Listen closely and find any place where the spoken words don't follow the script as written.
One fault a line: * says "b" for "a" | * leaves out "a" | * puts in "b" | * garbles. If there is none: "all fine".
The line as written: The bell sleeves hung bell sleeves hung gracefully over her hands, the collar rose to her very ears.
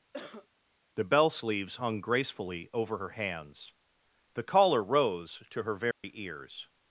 * leaves out "bell sleeves hung"